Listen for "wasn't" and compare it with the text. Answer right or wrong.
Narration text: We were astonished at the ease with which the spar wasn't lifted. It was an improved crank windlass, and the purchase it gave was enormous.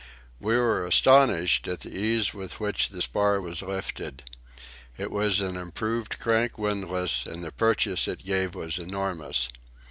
wrong